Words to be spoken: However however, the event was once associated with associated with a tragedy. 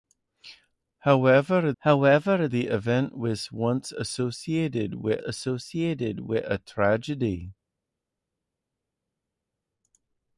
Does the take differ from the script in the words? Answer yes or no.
no